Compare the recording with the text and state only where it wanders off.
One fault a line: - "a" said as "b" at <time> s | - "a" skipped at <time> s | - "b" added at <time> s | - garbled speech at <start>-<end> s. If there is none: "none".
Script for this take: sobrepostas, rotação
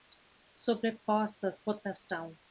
none